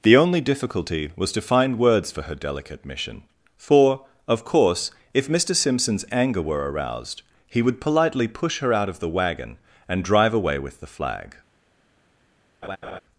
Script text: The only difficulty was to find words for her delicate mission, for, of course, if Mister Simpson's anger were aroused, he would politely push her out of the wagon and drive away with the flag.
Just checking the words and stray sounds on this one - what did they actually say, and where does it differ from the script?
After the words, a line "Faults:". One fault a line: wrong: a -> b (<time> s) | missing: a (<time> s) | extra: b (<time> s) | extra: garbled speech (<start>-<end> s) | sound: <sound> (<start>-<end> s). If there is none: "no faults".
The only difficulty was to find words for her delicate mission, for, of course, if Mister Simpson's anger were aroused, he would politely push her out of the wagon and drive away with the flag.
Faults:
sound: laugh (12.6-13.0 s)